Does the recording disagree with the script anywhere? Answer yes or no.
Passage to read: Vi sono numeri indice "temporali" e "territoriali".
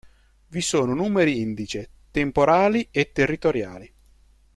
no